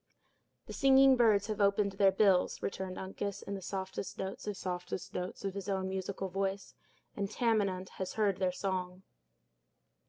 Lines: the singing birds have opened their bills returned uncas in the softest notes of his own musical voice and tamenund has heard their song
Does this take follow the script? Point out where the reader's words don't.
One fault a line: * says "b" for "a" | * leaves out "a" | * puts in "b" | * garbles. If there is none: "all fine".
* puts in "softest notes of"